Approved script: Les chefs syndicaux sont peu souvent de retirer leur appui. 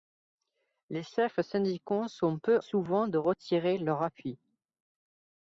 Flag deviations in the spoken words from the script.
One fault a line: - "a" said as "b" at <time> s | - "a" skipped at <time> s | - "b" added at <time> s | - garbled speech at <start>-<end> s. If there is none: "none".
none